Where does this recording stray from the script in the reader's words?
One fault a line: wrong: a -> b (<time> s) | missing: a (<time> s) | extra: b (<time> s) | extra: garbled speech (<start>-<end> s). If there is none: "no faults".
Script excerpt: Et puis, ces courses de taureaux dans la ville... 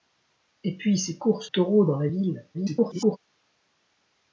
missing: de (1.5 s)
extra: garbled speech (2.5-3.2 s)